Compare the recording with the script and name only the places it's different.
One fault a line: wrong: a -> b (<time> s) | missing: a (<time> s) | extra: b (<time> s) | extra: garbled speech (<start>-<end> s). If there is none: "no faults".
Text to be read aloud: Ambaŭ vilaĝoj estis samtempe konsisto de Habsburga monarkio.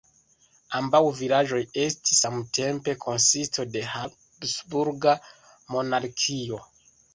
no faults